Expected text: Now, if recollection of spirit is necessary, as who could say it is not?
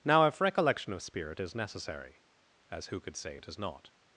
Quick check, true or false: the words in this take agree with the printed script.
true